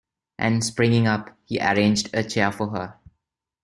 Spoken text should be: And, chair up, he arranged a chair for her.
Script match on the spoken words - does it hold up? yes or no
no